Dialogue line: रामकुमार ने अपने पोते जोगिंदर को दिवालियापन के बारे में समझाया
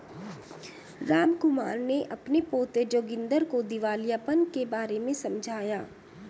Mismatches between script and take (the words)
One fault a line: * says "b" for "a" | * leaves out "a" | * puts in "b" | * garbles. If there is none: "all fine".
all fine